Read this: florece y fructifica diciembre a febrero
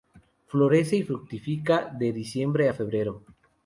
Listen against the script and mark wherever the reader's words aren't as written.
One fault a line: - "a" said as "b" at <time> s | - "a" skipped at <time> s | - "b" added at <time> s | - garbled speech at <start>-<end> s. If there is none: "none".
- "de" added at 2.0 s